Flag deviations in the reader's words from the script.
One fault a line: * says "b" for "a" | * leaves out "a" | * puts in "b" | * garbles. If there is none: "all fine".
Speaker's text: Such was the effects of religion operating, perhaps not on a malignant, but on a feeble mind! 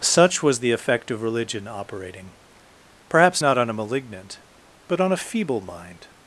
* says "effect" for "effects"